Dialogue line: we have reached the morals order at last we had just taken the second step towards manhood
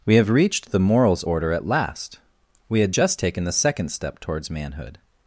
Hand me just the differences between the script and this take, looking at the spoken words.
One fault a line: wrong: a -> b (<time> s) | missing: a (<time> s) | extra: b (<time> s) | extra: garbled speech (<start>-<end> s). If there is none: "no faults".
no faults